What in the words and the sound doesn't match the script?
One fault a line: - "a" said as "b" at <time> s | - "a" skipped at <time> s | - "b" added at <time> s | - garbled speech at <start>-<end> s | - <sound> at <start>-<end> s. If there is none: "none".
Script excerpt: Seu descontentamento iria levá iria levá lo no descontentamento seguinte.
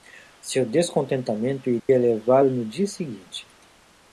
- dropout at 1.8-1.9 s
- "iria levá" skipped at 2.4 s
- "descontentamento" said as "dia" at 2.6 s